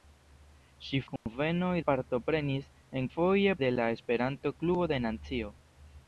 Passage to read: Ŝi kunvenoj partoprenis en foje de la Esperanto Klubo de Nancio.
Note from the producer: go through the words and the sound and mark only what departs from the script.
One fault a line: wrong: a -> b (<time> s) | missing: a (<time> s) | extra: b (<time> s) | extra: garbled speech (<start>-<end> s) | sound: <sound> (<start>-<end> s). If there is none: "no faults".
sound: dropout (1.2-1.3 s)